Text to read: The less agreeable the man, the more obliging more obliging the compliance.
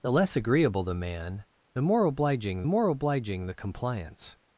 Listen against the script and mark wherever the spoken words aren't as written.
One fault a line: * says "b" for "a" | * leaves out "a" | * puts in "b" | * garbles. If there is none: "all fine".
all fine